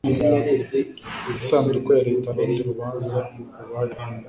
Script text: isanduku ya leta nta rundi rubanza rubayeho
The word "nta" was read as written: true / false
false